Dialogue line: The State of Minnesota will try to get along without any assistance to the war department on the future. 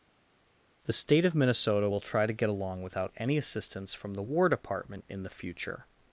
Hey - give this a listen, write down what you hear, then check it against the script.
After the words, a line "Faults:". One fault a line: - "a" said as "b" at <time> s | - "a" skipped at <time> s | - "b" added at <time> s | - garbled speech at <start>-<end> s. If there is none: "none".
The State of Minnesota will try to get along without any assistance from the war department in the future.
Faults:
- "to" said as "from" at 3.9 s
- "on" said as "in" at 5.1 s